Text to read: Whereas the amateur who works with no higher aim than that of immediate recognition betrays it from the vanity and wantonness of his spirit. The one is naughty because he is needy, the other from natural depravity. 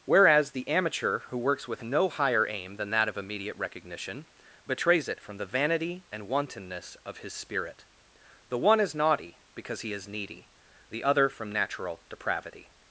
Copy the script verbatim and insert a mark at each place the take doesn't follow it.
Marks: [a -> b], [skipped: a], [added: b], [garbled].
Whereas the amateur who works with no higher aim than that of immediate recognition betrays it from the vanity and wantonness of his spirit. The one is naughty because he is needy, the other from natural depravity.